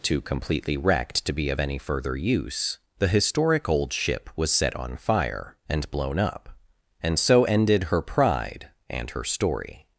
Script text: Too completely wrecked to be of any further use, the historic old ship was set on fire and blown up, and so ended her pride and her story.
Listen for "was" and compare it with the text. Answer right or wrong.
right